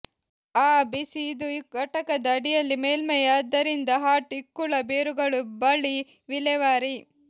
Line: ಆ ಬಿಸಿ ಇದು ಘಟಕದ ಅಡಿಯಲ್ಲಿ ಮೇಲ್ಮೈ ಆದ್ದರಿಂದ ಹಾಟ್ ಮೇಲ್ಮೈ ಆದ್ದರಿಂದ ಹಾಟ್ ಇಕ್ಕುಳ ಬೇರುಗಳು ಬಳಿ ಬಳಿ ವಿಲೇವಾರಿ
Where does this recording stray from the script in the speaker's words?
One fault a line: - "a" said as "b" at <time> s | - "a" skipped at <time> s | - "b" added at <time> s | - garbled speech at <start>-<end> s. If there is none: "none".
- "ಮೇಲ್ಮೈ ಆದ್ದರಿಂದ ಹಾಟ್" skipped at 4.3 s
- "ಬಳಿ" skipped at 6.0 s